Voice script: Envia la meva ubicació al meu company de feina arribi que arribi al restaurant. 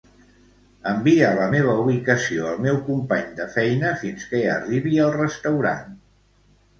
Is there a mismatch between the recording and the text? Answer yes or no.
yes